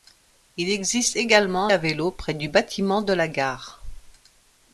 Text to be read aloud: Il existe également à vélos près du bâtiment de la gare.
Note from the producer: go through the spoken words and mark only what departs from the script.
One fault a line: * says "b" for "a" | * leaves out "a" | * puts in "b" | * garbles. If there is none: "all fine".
all fine